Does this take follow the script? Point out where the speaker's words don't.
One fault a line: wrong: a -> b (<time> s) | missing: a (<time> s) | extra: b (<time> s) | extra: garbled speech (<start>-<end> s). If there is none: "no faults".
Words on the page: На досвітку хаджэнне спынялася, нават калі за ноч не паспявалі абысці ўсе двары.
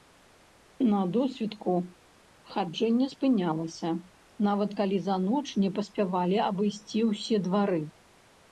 no faults